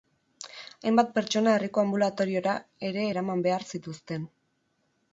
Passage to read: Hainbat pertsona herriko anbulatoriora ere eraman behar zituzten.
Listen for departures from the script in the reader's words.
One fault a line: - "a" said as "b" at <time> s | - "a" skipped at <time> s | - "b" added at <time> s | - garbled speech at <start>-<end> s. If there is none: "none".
none